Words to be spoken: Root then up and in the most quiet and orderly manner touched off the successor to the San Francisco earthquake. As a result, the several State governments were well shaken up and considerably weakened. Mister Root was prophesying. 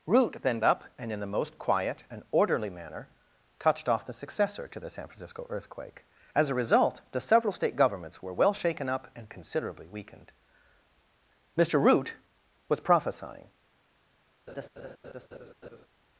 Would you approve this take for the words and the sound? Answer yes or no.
no